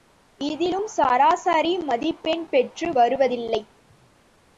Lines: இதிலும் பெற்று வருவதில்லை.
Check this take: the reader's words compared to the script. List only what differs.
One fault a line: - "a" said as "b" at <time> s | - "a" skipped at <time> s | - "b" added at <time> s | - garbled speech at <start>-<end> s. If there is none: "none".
- "சராசரி மதிப்பெண்" added at 0.9 s